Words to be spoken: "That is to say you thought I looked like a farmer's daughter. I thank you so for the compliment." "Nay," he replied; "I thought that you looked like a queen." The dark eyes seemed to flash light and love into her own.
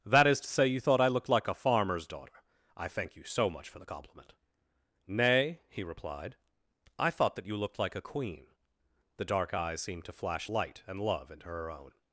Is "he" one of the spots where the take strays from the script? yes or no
no